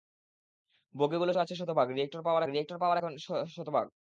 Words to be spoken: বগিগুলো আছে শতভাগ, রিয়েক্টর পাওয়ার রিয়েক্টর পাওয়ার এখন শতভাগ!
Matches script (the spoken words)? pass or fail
pass